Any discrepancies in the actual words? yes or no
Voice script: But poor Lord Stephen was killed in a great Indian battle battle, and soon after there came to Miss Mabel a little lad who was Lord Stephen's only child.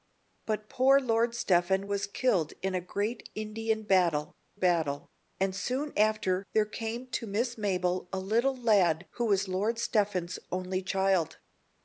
no